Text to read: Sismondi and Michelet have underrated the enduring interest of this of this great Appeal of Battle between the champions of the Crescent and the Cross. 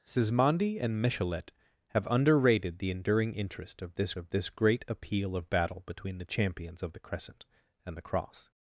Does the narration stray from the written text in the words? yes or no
no